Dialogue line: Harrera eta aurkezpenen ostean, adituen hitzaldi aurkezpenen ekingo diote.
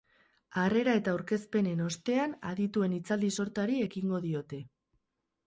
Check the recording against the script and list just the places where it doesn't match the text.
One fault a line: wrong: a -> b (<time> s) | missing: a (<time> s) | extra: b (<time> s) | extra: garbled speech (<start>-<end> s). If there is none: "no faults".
wrong: aurkezpenen -> sortari (3.4 s)